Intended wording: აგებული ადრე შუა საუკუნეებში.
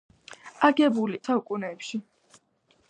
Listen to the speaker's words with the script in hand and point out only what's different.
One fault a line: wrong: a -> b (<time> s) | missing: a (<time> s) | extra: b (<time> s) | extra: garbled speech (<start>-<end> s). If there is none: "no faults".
missing: ადრე შუა (1.2 s)